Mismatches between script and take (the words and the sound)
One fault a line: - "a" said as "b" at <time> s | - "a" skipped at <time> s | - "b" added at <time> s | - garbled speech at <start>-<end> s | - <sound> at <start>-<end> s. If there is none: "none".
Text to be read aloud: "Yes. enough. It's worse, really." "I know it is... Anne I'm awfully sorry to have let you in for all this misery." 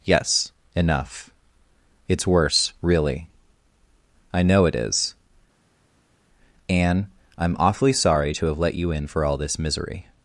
none